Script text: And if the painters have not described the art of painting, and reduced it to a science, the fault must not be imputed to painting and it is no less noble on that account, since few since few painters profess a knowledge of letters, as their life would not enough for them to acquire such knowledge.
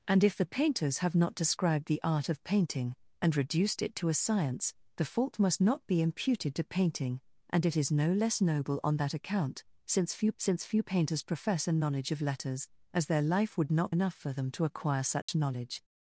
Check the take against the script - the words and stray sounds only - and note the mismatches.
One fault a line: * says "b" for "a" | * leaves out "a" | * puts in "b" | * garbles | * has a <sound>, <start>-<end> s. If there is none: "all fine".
* has a dropout, 15.2-15.3 s